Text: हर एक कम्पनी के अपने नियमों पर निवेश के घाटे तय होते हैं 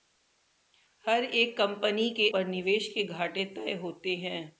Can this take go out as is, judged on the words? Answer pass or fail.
fail